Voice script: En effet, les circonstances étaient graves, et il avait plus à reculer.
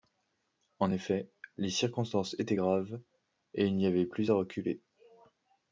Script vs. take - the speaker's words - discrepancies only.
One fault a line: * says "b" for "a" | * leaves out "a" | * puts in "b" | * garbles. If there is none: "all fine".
* puts in "n'y"